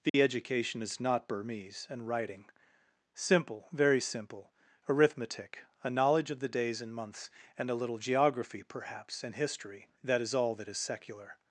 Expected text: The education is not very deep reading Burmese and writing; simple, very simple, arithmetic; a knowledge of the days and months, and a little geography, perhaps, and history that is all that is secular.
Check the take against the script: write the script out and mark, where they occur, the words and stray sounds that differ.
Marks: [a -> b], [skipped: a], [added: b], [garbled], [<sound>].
The [dropout] education is not [skipped: very deep reading] Burmese and writing; simple, very simple, arithmetic; a knowledge of the days and months, and a little geography, perhaps, and history that is all that is secular.